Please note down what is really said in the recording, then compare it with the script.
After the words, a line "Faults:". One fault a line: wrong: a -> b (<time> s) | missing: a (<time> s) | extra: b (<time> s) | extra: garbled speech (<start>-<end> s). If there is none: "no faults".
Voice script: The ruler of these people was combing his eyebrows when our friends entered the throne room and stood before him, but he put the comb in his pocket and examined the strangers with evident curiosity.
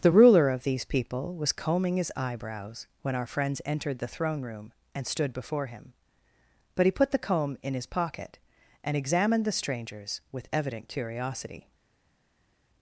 The ruler of these people was combing his eyebrows when our friends entered the throne room and stood before him, but he put the comb in his pocket and examined the strangers with evident curiosity.
Faults:
no faults